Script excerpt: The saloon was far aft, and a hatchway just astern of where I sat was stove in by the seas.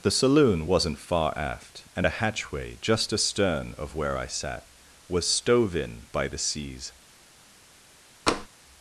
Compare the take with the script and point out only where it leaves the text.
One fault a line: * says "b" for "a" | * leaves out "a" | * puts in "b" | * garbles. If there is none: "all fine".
* says "wasn't" for "was"